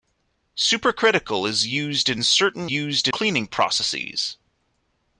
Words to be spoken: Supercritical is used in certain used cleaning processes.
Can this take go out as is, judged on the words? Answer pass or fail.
pass